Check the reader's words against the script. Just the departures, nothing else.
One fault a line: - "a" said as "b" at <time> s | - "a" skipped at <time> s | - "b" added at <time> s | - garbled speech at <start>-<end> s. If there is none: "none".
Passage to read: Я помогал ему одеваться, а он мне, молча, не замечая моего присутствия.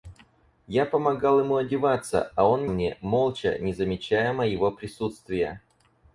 none